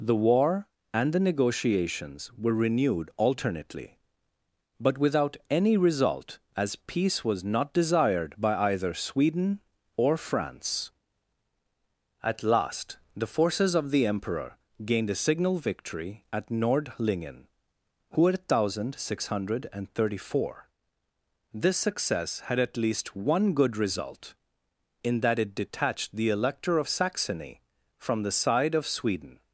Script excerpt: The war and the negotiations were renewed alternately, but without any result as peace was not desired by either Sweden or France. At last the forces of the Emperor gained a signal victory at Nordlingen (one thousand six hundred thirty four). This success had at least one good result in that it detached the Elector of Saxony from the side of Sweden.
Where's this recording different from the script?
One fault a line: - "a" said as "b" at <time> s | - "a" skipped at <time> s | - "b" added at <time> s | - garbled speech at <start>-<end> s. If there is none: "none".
none